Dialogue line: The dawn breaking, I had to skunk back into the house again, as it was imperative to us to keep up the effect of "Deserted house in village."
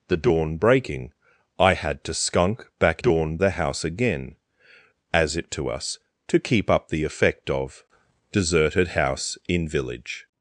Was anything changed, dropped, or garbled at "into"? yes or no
yes